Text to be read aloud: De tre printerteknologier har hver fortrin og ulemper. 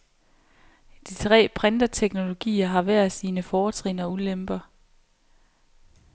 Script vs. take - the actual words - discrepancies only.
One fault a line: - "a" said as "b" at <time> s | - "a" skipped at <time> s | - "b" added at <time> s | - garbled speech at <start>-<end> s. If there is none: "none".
- "sine" added at 3.1 s